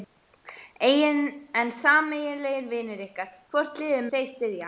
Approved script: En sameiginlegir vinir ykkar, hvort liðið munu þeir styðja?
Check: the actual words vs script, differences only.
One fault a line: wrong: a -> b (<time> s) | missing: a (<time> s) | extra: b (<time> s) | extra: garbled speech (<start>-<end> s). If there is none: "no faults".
missing: munu (4.1 s)